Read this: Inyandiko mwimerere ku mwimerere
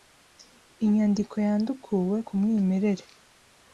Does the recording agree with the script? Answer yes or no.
no